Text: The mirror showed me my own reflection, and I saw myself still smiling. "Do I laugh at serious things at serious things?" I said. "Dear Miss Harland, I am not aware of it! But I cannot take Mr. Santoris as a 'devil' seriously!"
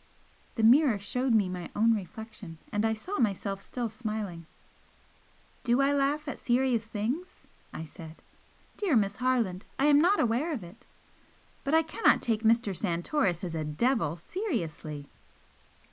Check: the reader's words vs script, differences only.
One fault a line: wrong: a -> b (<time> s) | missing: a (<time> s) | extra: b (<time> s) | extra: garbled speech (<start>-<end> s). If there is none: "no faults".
missing: at serious things (7.4 s)